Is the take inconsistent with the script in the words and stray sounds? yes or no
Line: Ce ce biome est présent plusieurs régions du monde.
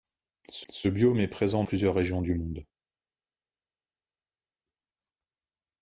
no